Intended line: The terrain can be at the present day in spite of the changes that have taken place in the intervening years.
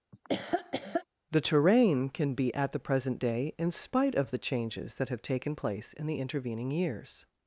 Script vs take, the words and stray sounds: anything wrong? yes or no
yes